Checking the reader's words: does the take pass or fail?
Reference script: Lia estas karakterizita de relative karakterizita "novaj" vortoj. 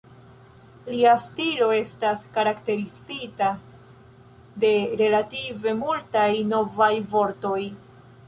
fail